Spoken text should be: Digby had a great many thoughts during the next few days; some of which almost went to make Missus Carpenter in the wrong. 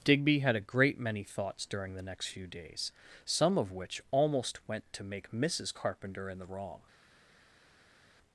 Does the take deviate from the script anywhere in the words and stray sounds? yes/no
no